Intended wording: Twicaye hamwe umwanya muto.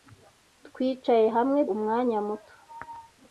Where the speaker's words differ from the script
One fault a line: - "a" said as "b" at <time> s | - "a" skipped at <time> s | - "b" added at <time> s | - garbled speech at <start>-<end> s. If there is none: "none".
none